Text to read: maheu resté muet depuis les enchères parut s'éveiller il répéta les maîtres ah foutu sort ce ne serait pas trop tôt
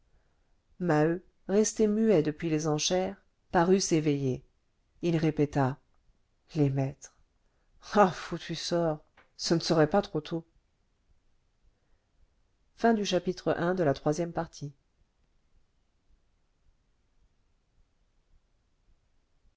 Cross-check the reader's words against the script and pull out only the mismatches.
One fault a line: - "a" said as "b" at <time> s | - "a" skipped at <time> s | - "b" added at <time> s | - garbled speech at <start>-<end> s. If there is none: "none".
none